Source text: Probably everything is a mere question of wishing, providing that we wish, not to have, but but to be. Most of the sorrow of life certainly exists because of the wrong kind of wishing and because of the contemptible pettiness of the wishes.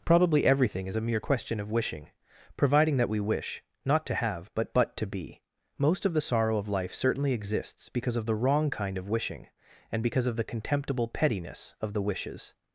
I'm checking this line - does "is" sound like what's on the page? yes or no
yes